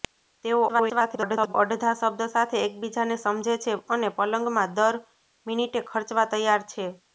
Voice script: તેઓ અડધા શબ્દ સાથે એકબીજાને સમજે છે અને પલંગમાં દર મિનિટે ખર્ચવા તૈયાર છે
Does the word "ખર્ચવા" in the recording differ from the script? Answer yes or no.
no